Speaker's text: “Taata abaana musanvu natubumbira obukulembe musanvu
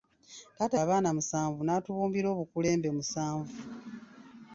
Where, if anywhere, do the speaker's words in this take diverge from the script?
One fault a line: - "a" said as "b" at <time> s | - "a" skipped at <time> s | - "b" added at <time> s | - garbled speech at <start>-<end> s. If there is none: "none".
none